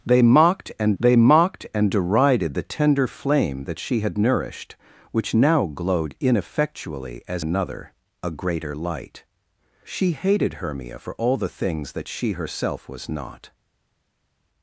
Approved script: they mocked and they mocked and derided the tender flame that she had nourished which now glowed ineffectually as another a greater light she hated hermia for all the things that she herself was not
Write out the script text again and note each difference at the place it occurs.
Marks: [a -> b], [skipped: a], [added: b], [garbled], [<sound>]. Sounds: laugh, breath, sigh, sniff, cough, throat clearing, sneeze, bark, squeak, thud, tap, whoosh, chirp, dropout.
they mocked and they mocked and derided the tender flame that she had nourished which now glowed ineffectually as another a greater light she hated hermia for all the things that she herself was not